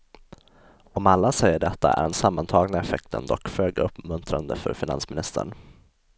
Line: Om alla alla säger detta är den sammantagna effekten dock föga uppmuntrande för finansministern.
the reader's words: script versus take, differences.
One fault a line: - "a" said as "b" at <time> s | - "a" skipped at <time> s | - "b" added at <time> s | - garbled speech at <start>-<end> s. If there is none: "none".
- "alla" skipped at 1.3 s